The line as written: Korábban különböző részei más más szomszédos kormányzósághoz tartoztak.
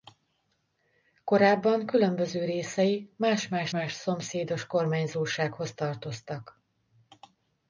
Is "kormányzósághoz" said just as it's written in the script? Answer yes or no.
yes